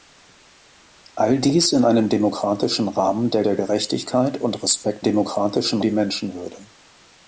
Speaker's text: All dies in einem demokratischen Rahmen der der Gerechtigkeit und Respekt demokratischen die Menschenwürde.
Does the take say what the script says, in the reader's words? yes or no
yes